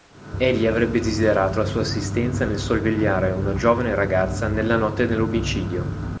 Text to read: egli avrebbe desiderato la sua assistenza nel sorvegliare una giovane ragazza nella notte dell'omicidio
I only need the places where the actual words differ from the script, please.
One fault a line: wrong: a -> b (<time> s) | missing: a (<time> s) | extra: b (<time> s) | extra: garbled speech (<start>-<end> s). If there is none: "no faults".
no faults